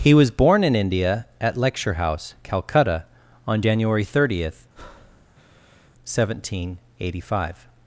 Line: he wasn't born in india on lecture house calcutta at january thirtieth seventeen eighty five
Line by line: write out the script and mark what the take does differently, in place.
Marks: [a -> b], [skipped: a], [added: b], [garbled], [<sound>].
he [wasn't -> was] born in india [on -> at] lecture house calcutta [at -> on] january thirtieth [breath] seventeen eighty five